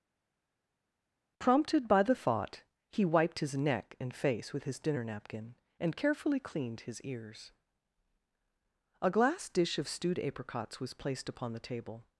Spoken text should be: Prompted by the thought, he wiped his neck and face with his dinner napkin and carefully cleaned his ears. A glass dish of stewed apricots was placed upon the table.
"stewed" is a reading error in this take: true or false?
false